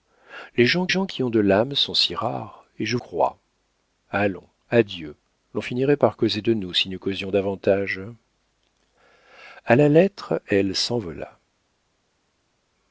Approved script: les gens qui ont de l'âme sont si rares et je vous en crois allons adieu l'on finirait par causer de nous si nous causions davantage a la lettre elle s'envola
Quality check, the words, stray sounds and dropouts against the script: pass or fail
fail